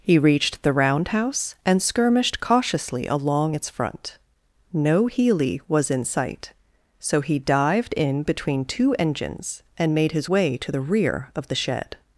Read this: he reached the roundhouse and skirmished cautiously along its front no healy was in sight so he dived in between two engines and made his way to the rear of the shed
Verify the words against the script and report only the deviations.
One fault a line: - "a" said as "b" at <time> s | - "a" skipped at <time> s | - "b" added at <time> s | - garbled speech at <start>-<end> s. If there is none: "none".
none